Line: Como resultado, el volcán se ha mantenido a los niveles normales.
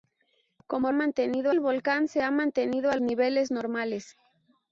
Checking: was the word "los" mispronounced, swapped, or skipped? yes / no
yes